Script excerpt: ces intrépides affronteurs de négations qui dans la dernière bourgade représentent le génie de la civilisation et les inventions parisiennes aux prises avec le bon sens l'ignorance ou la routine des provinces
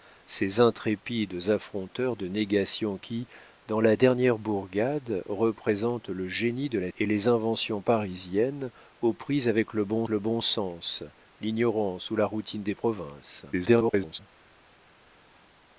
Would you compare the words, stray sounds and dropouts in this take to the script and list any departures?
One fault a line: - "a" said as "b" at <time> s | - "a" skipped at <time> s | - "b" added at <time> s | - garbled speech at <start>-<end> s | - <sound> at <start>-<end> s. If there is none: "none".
- "civilisation" skipped at 6.9 s
- "le bon" added at 10.1 s
- garbled speech at 13.5-14.2 s